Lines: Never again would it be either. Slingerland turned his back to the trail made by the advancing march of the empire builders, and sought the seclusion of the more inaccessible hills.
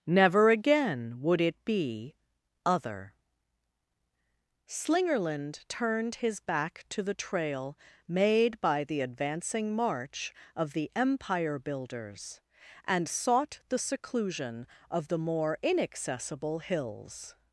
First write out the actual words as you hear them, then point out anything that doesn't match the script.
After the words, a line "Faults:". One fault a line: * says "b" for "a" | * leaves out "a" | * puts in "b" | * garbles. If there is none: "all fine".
Never again would it be other. Slingerland turned his back to the trail made by the advancing march of the empire builders, and sought the seclusion of the more inaccessible hills.
Faults:
* says "other" for "either"